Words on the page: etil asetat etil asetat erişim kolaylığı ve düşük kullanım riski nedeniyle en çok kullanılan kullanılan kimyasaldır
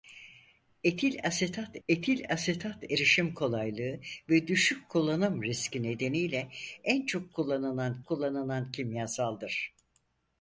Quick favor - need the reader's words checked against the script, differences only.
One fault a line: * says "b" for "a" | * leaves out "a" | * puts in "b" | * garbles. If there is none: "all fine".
all fine